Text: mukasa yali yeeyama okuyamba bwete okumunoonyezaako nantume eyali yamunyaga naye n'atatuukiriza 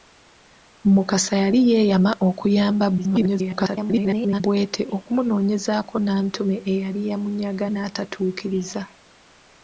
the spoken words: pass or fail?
fail